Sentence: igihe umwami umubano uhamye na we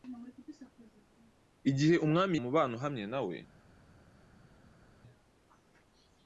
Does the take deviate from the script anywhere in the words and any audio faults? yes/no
no